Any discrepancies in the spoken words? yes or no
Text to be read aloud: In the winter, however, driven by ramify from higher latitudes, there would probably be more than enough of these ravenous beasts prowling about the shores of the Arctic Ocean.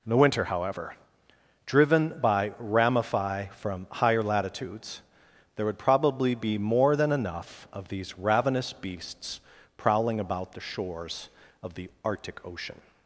no